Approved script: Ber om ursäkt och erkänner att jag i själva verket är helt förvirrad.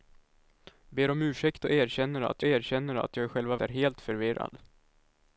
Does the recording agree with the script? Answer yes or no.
no